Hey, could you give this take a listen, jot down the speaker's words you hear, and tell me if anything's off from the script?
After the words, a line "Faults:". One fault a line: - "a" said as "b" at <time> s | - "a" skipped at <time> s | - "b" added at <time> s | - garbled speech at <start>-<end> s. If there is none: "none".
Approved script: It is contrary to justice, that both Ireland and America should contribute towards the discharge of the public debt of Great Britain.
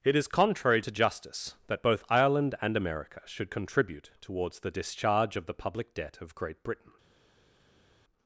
It is contrary to justice, that both Ireland and America should contribute towards the discharge of the public debt of Great Britain.
Faults:
none